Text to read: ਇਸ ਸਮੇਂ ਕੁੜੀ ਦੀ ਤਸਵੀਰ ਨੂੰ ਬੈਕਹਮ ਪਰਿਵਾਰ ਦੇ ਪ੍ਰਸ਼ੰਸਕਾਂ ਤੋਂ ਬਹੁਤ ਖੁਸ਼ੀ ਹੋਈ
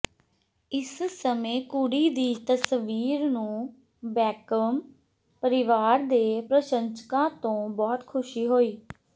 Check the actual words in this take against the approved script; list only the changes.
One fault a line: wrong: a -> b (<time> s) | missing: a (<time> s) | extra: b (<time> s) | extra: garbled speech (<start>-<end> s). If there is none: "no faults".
no faults